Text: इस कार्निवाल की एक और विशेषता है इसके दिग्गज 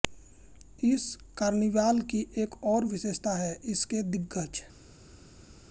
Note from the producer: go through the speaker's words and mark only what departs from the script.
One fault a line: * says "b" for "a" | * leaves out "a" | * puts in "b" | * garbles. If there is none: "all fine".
all fine